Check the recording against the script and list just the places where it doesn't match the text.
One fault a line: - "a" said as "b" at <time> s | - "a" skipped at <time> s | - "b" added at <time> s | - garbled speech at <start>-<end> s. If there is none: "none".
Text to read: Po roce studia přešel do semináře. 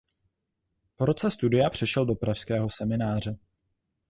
- "pražského" added at 2.1 s